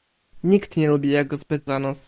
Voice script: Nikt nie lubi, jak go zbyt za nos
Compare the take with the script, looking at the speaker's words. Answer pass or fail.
pass